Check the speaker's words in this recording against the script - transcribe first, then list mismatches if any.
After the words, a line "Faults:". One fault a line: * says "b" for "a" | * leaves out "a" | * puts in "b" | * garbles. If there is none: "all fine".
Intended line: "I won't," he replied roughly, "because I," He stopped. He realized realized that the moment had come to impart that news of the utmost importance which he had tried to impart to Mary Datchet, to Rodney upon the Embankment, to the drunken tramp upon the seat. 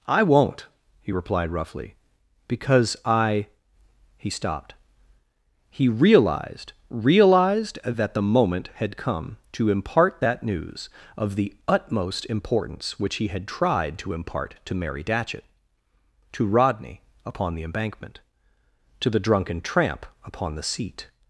"I won't," he replied roughly, "because I," He stopped. He realized realized that the moment had come to impart that news of the utmost importance which he had tried to impart to Mary Datchet, to Rodney upon the Embankment, to the drunken tramp upon the seat.
Faults:
all fine